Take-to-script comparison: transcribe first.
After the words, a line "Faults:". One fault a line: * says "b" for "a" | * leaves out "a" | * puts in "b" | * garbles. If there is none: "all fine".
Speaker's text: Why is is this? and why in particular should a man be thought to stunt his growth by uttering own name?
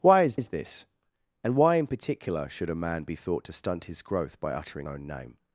Why is is this? and why in particular should a man be thought to stunt his growth by uttering own name?
Faults:
all fine